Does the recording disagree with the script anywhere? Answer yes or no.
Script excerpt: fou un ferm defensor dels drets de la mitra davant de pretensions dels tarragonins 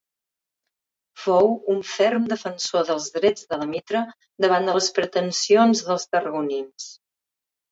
yes